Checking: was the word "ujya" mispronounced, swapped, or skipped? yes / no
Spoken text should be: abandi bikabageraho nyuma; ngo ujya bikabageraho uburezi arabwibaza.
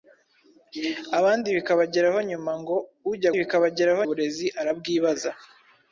no